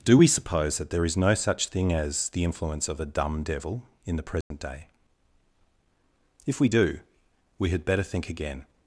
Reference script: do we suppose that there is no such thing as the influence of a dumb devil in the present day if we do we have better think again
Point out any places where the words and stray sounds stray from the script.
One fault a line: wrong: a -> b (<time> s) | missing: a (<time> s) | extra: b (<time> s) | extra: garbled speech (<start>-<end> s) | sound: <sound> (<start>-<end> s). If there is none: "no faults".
sound: dropout (4.4-4.5 s)
wrong: have -> had (7.7 s)